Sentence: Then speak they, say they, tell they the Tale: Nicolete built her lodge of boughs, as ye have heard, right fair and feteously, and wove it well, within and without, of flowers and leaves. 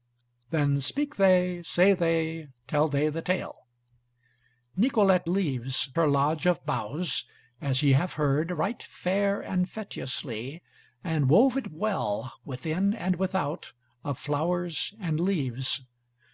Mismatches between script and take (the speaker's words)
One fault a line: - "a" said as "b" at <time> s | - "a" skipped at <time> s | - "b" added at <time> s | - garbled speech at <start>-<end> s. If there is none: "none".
- "built" said as "leaves" at 5.3 s